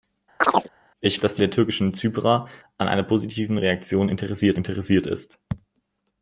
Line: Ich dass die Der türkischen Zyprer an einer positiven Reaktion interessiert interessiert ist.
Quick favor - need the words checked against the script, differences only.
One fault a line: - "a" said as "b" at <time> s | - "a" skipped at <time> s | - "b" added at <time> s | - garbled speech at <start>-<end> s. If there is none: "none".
none